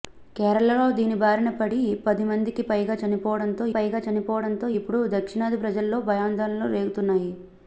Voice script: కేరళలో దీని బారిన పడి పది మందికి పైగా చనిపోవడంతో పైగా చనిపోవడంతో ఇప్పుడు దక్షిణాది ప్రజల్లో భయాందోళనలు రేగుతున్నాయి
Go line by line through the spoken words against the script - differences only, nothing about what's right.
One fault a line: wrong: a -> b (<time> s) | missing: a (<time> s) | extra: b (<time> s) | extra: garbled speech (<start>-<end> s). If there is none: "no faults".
no faults